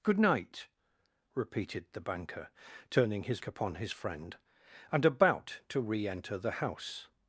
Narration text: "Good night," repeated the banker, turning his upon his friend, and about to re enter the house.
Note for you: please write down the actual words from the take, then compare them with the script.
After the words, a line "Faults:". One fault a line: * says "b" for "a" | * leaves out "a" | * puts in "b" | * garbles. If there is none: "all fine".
"Good night," repeated the banker, turning his upon his friend, and about to re enter the house.
Faults:
all fine